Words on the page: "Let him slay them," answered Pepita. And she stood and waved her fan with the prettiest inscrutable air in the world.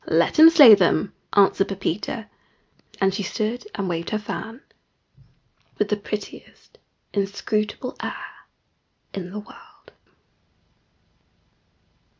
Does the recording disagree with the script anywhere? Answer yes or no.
no